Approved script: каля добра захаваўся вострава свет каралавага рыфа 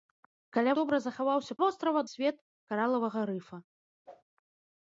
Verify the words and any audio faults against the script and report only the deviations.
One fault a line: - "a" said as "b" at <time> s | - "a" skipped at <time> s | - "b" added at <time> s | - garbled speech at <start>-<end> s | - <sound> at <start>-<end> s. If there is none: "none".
- whoosh at 4.1-4.2 s